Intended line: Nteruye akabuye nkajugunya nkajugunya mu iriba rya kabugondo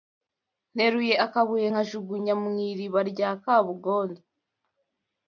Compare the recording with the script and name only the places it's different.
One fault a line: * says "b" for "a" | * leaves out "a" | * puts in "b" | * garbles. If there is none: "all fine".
* leaves out "nkajugunya"